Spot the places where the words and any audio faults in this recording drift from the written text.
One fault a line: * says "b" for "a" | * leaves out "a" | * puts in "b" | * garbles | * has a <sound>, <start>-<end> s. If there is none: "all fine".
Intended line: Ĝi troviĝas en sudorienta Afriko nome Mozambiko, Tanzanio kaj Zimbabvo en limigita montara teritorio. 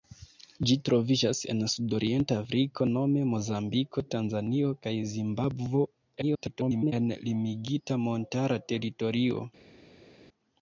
* garbles